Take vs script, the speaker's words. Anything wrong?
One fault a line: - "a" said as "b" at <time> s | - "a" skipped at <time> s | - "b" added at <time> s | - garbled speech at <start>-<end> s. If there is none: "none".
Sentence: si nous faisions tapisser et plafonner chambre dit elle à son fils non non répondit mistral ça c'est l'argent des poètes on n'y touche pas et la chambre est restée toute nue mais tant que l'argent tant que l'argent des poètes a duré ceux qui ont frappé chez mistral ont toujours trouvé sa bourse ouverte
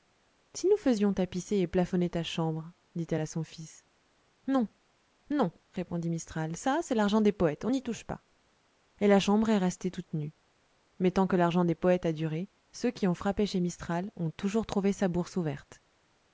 - "ta" added at 2.1 s
- "tant que l'argent" skipped at 11.6 s